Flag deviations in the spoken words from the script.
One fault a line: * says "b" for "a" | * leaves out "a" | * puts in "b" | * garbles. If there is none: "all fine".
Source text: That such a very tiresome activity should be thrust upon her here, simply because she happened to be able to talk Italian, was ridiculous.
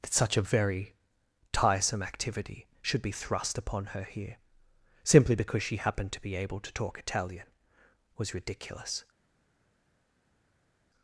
all fine